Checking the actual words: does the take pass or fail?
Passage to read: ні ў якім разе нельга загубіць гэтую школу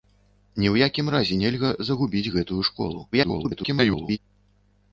fail